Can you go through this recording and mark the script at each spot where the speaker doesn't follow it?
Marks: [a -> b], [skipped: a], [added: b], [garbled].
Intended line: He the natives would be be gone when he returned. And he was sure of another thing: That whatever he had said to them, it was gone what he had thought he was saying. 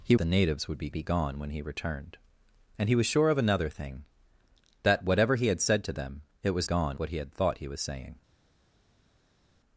He the natives would be be gone when he returned. And he was sure of another thing: That whatever he had said to them, it was gone what he had thought he was saying.